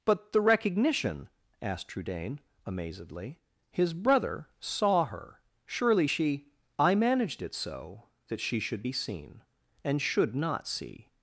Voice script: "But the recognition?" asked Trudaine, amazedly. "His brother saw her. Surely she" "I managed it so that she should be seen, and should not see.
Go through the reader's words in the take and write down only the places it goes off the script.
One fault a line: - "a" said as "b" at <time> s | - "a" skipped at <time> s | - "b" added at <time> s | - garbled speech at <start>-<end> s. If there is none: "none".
none